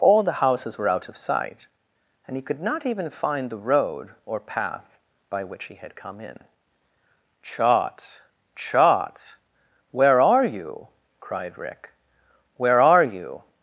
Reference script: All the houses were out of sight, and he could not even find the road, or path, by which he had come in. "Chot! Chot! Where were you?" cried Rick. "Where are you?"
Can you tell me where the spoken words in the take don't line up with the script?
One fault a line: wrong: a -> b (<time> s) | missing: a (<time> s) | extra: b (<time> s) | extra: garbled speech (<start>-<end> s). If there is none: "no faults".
wrong: were -> are (10.2 s)